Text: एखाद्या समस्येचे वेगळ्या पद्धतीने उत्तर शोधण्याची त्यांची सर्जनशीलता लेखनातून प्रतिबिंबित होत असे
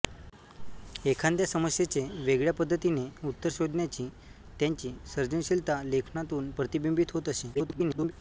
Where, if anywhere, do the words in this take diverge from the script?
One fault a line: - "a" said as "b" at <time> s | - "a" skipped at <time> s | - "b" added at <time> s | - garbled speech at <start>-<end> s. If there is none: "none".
- garbled speech at 7.5-8.1 s